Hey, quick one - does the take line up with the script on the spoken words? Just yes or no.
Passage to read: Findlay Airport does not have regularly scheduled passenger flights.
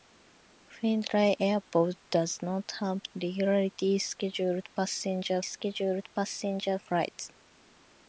no